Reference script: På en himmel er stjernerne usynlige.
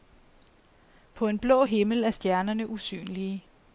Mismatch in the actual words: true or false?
true